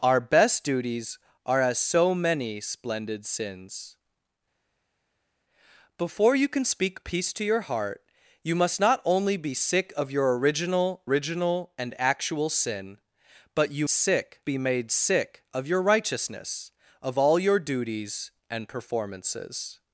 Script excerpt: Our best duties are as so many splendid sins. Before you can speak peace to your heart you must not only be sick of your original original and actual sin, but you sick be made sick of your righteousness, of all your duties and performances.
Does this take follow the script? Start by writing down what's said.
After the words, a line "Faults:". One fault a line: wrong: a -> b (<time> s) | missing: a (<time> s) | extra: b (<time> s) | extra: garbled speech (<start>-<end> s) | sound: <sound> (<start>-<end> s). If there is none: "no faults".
Our best duties are as so many splendid sins. Before you can speak peace to your heart you must not only be sick of your original original and actual sin, but you sick be made sick of your righteousness, of all your duties and performances.
Faults:
no faults